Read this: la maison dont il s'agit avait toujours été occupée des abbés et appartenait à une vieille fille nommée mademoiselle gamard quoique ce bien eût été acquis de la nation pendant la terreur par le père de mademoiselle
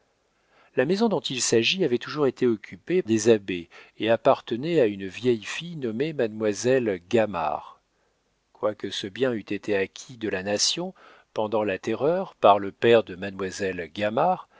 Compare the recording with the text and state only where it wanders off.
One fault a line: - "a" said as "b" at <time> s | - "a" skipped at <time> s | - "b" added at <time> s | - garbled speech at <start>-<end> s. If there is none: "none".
none